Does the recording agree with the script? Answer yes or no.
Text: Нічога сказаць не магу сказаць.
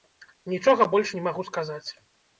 no